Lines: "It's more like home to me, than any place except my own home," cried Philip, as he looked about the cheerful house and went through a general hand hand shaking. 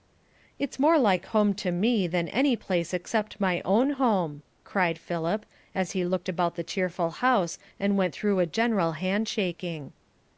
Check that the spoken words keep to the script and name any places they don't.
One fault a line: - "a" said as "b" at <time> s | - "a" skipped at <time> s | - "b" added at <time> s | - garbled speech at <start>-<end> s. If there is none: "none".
- "hand" skipped at 9.3 s